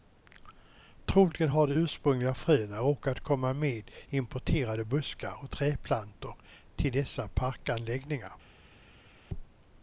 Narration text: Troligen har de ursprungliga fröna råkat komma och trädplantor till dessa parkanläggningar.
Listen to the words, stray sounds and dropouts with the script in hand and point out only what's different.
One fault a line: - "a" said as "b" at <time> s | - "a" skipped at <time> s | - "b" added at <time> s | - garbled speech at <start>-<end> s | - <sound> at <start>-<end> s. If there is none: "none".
- "med importerade buskar" added at 3.5 s